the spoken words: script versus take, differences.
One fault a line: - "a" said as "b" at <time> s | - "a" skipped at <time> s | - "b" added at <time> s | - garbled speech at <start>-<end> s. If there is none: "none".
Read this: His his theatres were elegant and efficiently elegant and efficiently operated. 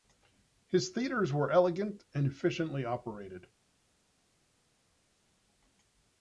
- "his" skipped at 0.9 s
- "elegant and efficiently" skipped at 2.9 s